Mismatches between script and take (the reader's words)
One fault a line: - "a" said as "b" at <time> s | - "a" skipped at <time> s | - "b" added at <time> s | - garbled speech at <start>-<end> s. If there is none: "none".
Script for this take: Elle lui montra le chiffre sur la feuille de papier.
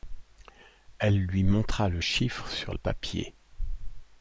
- "la feuille de" skipped at 2.7 s